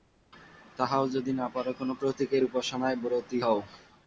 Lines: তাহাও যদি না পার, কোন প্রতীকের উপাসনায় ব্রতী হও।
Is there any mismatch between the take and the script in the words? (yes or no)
no